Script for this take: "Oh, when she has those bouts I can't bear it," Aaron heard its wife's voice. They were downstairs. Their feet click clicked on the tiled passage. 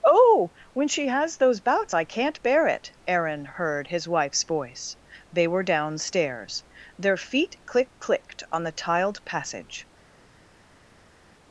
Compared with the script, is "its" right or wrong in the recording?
wrong